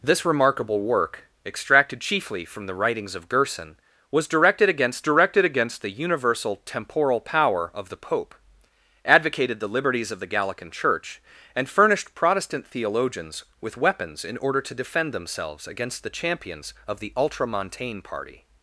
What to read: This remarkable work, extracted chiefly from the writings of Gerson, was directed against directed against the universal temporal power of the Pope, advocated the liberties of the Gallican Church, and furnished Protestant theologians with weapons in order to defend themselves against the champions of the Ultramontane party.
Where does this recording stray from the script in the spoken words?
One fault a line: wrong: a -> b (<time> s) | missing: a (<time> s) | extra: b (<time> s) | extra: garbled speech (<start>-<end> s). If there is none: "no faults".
no faults